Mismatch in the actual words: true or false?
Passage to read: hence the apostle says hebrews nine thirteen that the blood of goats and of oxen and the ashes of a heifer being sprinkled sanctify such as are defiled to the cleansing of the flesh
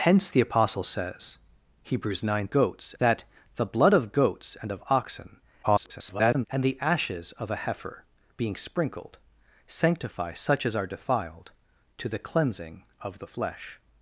true